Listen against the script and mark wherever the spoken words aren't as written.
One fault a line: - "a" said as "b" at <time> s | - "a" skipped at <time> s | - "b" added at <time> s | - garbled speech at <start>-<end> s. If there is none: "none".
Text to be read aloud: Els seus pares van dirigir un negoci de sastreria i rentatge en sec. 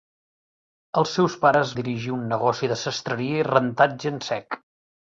- "van" skipped at 1.7 s